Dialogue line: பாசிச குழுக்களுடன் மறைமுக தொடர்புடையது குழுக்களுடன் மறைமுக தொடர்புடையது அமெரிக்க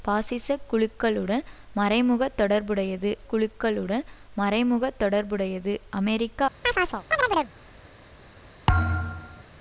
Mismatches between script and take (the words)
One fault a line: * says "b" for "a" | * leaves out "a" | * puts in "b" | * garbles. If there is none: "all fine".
all fine